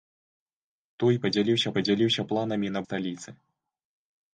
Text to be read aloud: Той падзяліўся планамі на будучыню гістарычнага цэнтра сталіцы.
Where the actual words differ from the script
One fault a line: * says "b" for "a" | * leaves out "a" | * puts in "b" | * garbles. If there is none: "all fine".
* puts in "падзяліўся"
* leaves out "будучыню гістарычнага цэнтра"